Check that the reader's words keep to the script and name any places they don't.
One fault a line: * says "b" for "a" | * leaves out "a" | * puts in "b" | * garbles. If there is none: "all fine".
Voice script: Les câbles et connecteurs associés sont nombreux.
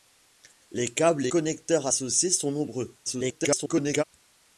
* leaves out "et"
* garbles